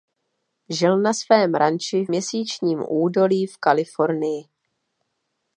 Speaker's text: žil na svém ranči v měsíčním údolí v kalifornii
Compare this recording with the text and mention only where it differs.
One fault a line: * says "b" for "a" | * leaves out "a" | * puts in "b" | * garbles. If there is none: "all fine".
all fine